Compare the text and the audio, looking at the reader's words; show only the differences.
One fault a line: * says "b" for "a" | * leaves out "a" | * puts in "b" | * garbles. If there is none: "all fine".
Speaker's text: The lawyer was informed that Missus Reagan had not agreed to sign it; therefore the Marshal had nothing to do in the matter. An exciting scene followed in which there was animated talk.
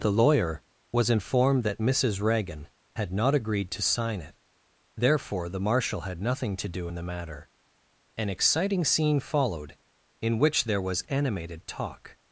all fine